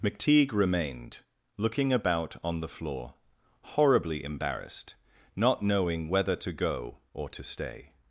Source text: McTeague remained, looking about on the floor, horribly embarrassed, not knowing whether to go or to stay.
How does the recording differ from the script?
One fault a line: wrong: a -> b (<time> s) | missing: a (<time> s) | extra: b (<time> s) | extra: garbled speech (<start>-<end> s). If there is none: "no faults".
no faults